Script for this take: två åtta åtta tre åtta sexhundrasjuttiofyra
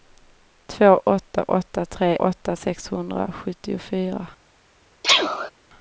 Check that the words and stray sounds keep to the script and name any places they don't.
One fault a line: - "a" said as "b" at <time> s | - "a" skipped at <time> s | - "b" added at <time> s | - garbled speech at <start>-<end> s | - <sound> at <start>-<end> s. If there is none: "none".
- sneeze at 5.0-5.5 s